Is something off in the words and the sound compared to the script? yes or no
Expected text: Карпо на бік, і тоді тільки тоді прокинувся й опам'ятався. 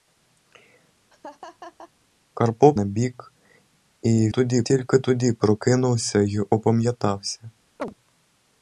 yes